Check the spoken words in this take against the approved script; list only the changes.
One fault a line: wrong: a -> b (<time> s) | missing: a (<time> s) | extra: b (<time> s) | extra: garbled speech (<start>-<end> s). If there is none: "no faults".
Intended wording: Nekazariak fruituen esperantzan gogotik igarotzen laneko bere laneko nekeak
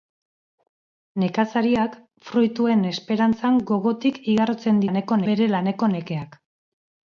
no faults